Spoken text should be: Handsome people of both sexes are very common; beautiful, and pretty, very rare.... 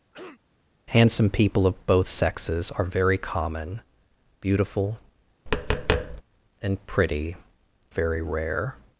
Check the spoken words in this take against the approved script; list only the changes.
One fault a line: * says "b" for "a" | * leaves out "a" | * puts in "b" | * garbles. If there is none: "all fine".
all fine